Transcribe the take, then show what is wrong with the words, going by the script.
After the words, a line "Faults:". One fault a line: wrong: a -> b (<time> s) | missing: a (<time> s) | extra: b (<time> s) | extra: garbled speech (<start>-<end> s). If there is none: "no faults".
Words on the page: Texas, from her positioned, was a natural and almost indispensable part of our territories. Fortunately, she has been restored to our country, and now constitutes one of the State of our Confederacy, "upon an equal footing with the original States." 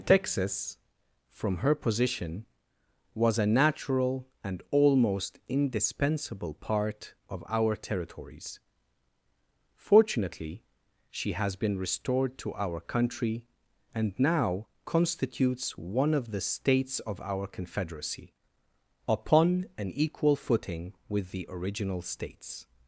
Texas, from her position, was a natural and almost indispensable part of our territories. Fortunately, she has been restored to our country, and now constitutes one of the States of our Confederacy, "upon an equal footing with the original States."
Faults:
wrong: positioned -> position (1.8 s)
wrong: State -> States (16.4 s)